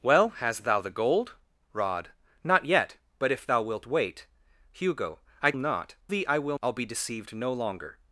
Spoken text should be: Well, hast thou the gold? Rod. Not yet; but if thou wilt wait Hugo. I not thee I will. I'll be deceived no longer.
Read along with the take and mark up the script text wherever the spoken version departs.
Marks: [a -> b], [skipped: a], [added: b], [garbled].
Well, hast thou the gold? Rod. Not yet; but if thou wilt wait Hugo. I not thee I will. I'll be deceived no longer.